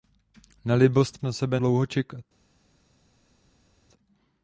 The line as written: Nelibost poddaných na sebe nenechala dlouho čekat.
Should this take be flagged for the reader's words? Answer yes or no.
yes